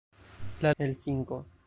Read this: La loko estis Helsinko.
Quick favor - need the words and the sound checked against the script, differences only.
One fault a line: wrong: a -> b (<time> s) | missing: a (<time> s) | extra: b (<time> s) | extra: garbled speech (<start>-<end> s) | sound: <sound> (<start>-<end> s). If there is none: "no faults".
missing: loko estis (0.7 s)